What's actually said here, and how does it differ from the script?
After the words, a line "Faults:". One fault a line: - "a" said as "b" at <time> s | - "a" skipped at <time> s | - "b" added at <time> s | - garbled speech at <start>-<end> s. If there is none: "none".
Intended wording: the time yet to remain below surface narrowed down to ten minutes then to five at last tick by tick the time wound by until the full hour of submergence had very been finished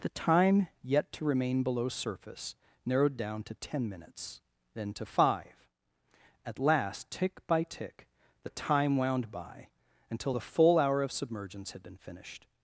the time yet to remain below surface narrowed down to ten minutes then to five at last tick by tick the time wound by until the full hour of submergence had been finished
Faults:
- "very" skipped at 11.8 s